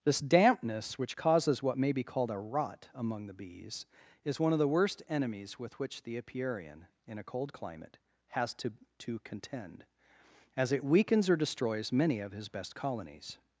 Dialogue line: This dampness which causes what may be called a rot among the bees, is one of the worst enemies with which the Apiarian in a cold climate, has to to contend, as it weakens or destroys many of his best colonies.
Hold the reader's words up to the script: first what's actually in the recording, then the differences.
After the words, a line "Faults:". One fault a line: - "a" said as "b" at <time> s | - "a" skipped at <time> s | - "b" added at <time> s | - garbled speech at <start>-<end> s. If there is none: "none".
This dampness which causes what may be called a rot among the bees, is one of the worst enemies with which the Apiarian in a cold climate, has to to contend, as it weakens or destroys many of his best colonies.
Faults:
none